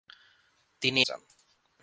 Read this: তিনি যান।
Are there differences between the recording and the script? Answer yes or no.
no